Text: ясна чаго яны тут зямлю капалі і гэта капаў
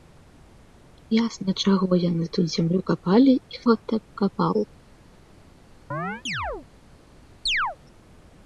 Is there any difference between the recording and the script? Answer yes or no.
no